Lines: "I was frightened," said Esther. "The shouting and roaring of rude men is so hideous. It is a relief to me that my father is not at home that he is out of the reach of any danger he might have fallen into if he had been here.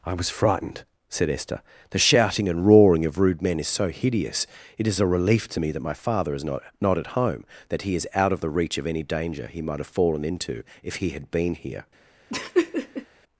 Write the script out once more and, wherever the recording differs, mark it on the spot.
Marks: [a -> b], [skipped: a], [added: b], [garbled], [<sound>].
"I was frightened," said Esther. "The shouting and roaring of rude men is so hideous. It is a relief to me that my father is not [added: not] at home that he is out of the reach of any danger he might have fallen into if he had been here. [laugh]